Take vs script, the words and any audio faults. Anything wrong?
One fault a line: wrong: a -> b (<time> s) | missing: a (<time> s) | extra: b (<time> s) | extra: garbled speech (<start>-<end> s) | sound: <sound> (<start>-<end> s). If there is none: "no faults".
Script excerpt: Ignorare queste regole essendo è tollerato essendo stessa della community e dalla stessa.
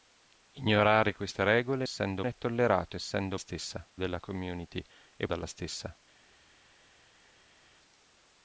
no faults